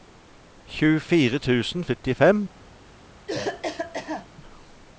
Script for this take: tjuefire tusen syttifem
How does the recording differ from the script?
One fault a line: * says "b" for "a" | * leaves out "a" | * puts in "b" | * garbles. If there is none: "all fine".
all fine